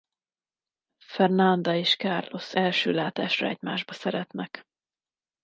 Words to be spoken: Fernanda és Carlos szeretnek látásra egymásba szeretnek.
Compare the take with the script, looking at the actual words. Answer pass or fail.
fail